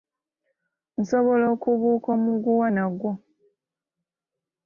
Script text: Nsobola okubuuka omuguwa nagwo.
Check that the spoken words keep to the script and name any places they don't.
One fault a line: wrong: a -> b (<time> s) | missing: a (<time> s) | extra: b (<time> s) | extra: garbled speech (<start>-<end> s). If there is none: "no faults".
no faults